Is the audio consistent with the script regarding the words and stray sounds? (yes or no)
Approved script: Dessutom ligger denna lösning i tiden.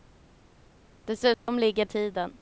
no